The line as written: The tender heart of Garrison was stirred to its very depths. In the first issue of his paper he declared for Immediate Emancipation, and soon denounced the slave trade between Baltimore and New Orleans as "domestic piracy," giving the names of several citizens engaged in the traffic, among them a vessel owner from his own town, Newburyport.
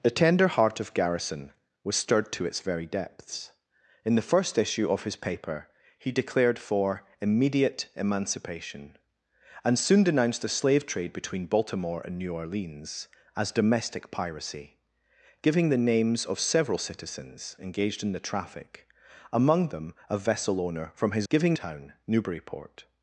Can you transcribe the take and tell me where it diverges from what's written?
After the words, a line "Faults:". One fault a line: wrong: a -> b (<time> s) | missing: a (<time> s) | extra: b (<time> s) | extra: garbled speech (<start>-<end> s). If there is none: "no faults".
The tender heart of Garrison was stirred to its very depths. In the first issue of his paper he declared for Immediate Emancipation, and soon denounced the slave trade between Baltimore and New Orleans as "domestic piracy," giving the names of several citizens engaged in the traffic, among them a vessel owner from his giving town, Newburyport.
Faults:
wrong: own -> giving (21.3 s)